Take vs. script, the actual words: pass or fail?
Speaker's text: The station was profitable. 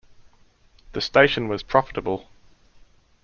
pass